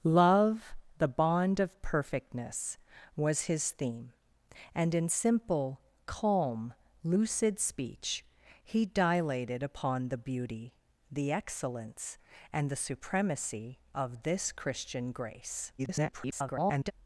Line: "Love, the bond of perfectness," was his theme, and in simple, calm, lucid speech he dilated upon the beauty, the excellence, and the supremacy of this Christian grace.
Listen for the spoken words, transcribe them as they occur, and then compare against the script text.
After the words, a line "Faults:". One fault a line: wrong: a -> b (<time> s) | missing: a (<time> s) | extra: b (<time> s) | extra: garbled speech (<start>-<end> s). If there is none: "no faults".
"Love, the bond of perfectness," was his theme, and in simple, calm, lucid speech he dilated upon the beauty, the excellence, and the supremacy of this Christian grace. [garbled]
Faults:
extra: garbled speech (15.8-16.9 s)